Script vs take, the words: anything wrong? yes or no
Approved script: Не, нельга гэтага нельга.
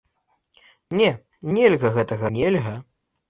no